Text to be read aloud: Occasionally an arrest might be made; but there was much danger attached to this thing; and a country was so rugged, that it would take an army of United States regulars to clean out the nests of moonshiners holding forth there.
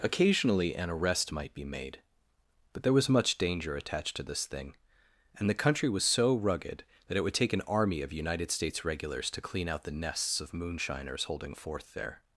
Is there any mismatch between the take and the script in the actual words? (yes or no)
yes